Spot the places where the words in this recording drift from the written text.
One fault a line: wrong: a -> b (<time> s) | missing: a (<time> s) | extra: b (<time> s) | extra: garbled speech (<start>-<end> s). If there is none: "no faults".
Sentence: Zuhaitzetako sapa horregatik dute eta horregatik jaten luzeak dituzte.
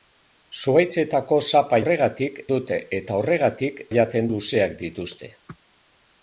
no faults